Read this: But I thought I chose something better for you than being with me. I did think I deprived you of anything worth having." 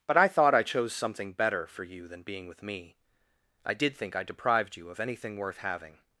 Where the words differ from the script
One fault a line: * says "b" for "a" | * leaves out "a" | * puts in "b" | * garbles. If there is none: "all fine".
all fine